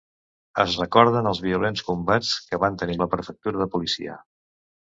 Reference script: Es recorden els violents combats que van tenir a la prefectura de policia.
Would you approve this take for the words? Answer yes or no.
yes